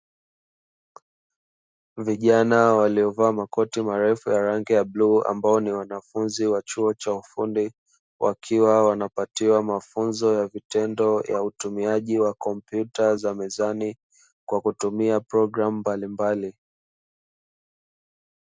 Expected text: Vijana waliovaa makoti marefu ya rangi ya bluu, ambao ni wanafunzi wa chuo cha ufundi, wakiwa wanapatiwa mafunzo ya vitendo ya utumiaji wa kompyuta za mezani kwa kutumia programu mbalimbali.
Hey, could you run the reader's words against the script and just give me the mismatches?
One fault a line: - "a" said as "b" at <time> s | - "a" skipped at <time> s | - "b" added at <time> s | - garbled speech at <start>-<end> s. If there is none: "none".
none